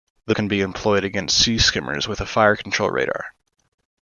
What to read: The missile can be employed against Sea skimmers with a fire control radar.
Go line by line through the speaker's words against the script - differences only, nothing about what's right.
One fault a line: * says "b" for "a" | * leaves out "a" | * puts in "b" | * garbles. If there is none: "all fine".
* leaves out "missile"